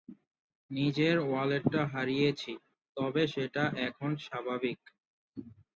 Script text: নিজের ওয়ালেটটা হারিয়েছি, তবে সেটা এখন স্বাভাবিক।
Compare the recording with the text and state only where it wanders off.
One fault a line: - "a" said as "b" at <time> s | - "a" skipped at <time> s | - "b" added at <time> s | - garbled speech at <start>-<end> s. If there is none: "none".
none